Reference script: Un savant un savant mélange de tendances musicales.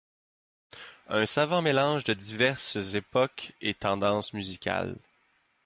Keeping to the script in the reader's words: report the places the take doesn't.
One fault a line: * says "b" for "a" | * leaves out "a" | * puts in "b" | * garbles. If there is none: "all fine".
* says "mélange de diverses époques et" for "un savant mélange de"